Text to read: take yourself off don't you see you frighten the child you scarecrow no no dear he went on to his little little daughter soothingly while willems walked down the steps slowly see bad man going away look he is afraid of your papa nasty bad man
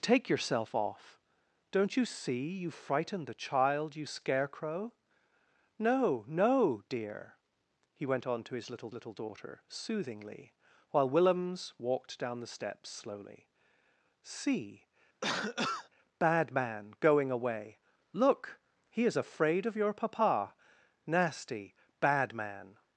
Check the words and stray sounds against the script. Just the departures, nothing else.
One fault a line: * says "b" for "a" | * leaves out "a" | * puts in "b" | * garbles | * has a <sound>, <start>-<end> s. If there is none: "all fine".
* has a cough, 15.2-15.9 s